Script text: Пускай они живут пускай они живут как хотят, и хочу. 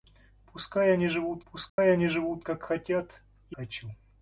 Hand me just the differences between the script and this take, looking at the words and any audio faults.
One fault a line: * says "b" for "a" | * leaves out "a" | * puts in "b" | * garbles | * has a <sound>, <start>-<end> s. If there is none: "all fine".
* has a dropout, 1.7-1.8 s